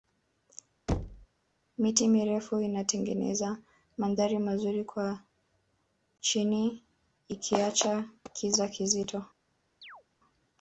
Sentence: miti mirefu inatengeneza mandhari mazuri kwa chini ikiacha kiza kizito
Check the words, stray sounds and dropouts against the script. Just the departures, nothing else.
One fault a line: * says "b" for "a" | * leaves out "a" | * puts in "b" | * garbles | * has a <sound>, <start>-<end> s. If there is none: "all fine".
* has a thud, 0.9-1.3 s
* has a chirp, 9.8-10.0 s